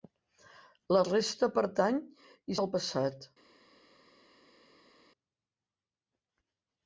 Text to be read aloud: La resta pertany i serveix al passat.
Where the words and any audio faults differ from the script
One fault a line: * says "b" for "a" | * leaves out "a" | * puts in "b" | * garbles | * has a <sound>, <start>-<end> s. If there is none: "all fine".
* leaves out "serveix"